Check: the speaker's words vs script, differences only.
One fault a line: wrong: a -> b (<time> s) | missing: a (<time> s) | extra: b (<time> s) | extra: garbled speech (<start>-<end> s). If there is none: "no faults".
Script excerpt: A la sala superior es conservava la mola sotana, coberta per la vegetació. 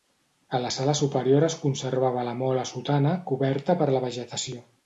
no faults